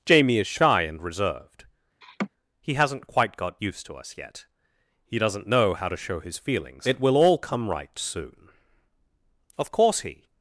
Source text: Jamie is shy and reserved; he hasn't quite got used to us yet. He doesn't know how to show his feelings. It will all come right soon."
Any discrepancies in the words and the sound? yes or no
yes